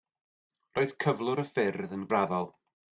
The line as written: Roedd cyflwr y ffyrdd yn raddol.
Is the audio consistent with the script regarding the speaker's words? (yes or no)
yes